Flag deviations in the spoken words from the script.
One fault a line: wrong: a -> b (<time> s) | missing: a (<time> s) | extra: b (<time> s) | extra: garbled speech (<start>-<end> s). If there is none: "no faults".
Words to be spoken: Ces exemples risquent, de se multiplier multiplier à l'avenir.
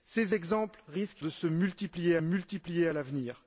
no faults